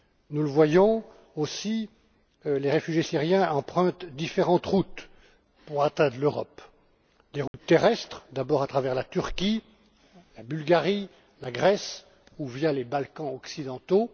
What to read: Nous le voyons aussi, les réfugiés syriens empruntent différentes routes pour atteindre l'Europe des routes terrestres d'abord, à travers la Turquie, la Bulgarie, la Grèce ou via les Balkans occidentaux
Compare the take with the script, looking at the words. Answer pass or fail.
pass